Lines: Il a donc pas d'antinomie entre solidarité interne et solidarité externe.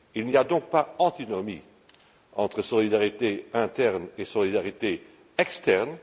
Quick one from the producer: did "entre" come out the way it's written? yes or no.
yes